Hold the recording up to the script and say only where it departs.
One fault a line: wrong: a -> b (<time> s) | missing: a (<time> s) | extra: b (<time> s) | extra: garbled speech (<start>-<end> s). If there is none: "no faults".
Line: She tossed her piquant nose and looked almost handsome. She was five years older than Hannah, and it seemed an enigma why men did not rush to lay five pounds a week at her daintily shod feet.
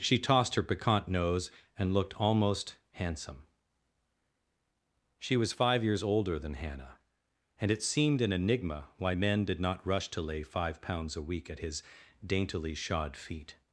wrong: her -> his (11.6 s)